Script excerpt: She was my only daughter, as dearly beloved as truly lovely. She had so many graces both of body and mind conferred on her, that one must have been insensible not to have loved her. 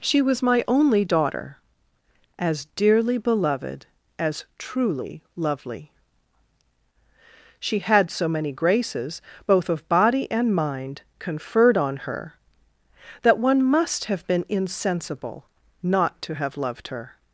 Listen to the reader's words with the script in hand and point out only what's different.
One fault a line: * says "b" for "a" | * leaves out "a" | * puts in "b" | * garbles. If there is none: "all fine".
all fine